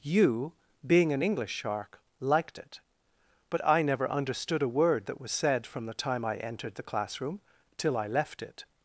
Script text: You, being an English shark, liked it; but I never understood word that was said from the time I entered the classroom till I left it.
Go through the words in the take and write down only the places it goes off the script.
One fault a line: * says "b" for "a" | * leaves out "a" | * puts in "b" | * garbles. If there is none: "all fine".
* puts in "a"